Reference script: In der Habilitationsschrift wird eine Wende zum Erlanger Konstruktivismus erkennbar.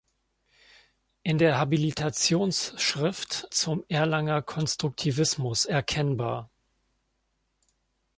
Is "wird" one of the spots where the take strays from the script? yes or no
yes